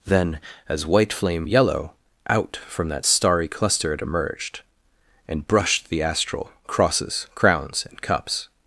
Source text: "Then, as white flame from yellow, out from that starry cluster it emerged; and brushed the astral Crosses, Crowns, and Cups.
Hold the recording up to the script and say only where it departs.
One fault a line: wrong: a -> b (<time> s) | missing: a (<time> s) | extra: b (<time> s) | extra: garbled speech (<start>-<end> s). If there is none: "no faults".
missing: from (1.4 s)